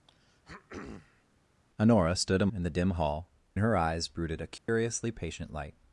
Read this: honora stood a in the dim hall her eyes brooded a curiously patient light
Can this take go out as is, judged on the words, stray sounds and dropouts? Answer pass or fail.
fail